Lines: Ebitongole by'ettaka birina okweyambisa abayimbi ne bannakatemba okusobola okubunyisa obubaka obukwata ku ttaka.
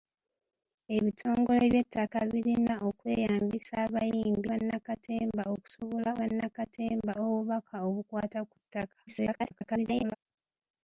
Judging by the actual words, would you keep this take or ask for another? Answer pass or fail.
fail